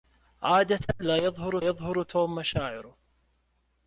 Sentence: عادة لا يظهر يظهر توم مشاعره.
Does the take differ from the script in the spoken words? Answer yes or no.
no